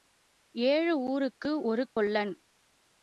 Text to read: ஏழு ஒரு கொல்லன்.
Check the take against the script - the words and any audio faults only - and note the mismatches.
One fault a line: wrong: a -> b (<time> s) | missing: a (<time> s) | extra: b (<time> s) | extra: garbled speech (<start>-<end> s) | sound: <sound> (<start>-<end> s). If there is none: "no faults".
extra: ஊருக்கு (1.0 s)
sound: dropout (1.9-2.0 s)